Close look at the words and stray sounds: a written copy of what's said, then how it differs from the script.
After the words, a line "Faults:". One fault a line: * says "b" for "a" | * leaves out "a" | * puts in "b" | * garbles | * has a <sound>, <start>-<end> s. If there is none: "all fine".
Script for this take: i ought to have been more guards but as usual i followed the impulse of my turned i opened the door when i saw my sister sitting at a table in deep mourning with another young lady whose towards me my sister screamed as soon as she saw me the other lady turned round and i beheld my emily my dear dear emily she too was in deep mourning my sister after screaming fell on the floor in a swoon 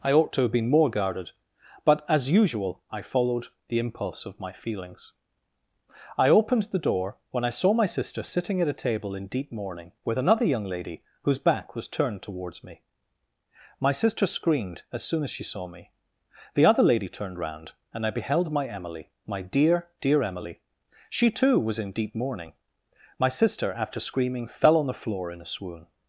i ought to have been more guarded but as usual i followed the impulse of my feelings i opened the door when i saw my sister sitting at a table in deep mourning with another young lady whose back was turned towards me my sister screamed as soon as she saw me the other lady turned round and i beheld my emily my dear dear emily she too was in deep mourning my sister after screaming fell on the floor in a swoon
Faults:
* says "guarded" for "guards"
* says "feelings" for "turned"
* puts in "back was turned"